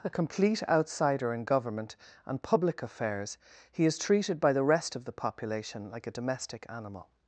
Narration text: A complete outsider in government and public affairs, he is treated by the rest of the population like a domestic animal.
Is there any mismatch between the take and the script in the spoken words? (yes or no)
no